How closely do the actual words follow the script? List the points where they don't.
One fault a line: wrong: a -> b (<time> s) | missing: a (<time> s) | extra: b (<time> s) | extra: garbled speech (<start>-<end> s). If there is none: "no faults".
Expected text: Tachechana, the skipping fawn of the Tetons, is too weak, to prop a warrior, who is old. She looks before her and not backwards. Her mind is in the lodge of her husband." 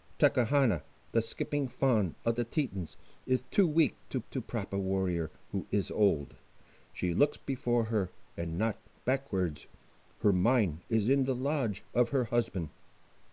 extra: to (4.3 s)